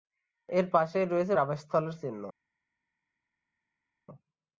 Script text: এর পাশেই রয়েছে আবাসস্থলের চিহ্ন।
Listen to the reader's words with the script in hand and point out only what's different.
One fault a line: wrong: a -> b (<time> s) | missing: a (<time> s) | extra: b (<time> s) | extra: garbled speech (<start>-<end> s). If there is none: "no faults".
no faults